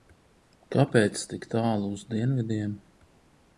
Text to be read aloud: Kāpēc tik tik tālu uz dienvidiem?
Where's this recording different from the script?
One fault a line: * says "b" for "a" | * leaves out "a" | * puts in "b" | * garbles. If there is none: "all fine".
* leaves out "tik"